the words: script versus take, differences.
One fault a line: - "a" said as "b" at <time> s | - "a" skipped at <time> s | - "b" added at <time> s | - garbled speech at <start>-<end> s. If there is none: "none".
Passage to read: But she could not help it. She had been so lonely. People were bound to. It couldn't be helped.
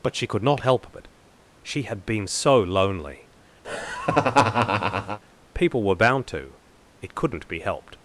none